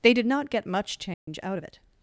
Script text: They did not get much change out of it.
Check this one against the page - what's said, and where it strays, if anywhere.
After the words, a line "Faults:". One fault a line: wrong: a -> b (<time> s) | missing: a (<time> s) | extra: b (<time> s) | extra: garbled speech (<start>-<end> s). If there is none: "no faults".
They did not get much change out of it.
Faults:
no faults